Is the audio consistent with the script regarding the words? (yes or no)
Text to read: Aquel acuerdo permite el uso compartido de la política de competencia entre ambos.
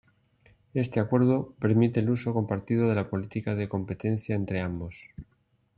no